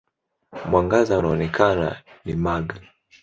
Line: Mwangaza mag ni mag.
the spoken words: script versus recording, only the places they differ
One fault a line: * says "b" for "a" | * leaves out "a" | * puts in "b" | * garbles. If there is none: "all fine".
* says "unaoonekana" for "mag"